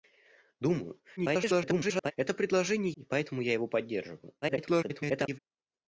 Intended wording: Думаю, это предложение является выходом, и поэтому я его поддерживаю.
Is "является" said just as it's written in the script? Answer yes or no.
no